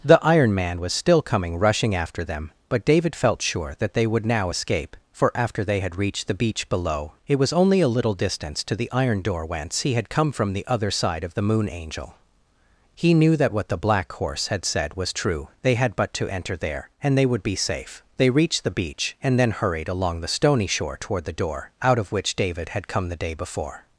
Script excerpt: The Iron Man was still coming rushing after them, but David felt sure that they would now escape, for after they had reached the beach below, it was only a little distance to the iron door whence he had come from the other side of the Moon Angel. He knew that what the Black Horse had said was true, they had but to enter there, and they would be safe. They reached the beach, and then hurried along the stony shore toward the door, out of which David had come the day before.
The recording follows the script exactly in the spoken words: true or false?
true